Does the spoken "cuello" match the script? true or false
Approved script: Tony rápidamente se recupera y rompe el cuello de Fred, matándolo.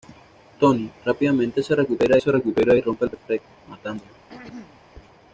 false